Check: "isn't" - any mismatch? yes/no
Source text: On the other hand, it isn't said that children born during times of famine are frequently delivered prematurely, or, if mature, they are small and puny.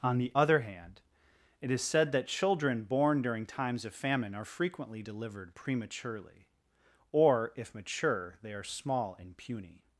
yes